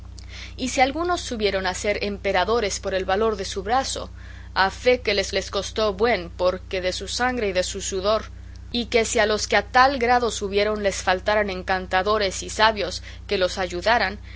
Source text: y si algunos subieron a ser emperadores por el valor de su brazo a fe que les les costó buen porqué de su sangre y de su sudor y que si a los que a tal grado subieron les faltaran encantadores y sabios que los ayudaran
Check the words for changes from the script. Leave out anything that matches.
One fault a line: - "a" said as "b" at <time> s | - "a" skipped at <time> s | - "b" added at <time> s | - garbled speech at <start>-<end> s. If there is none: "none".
none